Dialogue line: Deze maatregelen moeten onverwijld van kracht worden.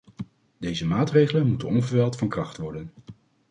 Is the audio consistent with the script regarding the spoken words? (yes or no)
yes